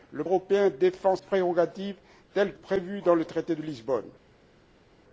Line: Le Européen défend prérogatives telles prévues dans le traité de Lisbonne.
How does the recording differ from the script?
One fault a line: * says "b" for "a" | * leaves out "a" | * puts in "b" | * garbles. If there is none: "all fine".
all fine